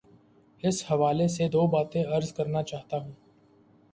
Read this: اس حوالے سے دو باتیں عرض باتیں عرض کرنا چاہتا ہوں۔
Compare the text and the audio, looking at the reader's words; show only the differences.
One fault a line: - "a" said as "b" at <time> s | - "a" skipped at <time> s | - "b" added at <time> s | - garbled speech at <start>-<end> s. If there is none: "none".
- "باتیں عرض" skipped at 2.3 s